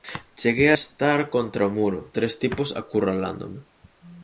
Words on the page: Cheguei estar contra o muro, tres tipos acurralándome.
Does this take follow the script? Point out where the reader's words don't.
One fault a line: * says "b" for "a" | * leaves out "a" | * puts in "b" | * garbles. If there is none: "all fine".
all fine